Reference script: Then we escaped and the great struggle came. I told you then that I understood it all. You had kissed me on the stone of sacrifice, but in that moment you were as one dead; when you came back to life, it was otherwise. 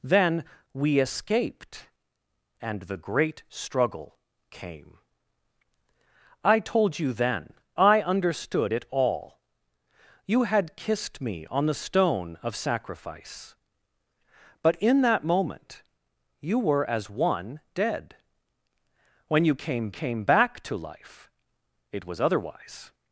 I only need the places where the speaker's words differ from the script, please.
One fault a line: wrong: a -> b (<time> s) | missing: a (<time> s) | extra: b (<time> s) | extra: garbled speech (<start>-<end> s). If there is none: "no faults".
missing: that (7.5 s)
extra: came (19.9 s)